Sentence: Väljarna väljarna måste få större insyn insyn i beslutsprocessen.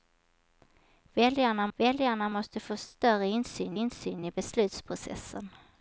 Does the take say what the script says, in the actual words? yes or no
yes